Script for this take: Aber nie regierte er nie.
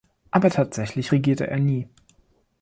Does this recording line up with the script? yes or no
no